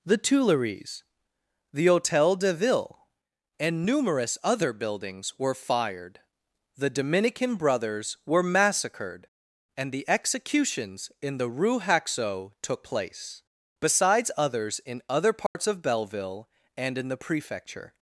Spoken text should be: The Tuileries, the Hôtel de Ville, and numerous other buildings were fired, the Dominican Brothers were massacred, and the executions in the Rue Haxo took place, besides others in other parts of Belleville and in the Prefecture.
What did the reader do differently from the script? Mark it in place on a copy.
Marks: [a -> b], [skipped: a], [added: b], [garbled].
The Tuileries, the Hôtel de Ville, and numerous other buildings were fired, the Dominican Brothers were massacred, and the executions in the Rue Haxo took place, besides others in other parts of Belleville and in the Prefecture.